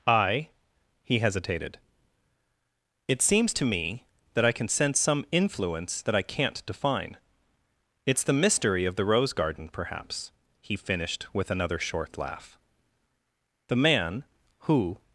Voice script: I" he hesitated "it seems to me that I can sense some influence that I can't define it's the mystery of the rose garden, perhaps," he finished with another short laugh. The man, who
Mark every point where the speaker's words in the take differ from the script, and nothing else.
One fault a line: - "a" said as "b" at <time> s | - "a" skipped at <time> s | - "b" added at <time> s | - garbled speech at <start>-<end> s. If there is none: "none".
none